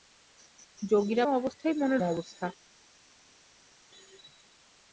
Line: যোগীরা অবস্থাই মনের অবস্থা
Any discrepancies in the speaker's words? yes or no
no